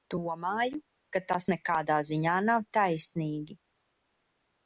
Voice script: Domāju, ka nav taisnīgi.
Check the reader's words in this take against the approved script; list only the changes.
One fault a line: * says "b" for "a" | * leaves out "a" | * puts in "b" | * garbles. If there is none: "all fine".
* puts in "tas nekādā ziņā"